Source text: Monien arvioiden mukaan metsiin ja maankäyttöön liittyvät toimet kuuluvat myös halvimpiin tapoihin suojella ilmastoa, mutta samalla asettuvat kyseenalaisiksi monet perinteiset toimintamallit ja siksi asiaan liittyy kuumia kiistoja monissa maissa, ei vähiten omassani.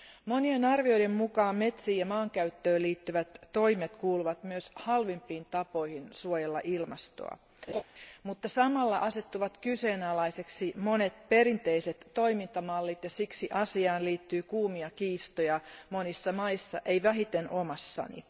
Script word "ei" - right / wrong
right